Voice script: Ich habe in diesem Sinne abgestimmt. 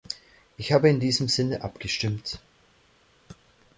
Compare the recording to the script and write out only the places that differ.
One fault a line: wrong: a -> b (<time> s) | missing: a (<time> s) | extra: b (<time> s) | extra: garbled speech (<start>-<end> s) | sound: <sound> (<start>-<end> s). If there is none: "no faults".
no faults